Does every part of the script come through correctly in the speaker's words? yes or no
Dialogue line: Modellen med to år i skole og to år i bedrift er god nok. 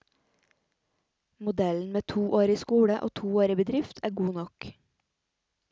yes